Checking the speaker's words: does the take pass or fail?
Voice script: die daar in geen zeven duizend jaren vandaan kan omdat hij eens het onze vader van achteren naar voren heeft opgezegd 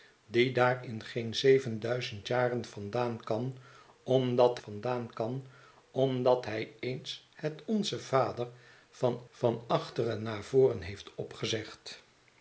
fail